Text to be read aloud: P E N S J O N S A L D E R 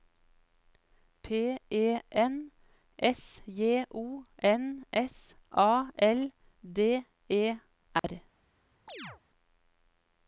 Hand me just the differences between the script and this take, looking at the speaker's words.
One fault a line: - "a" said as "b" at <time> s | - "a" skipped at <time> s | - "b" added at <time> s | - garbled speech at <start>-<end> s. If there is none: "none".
none